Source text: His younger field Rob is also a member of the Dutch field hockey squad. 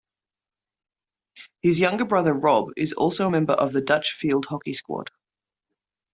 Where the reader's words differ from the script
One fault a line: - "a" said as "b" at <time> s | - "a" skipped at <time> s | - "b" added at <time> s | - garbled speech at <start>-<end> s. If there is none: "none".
- "field" said as "brother" at 2.0 s